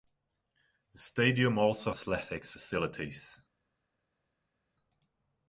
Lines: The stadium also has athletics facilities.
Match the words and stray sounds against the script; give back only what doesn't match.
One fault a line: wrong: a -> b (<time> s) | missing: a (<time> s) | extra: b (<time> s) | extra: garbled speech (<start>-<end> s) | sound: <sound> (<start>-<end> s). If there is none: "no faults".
missing: has (1.9 s)